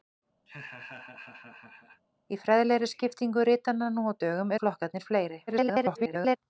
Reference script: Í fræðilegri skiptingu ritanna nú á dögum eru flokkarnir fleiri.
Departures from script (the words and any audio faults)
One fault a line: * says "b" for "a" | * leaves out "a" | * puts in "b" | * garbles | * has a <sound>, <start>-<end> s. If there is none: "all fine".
* has a laugh, 0.5-2.0 s
* leaves out "eru"
* garbles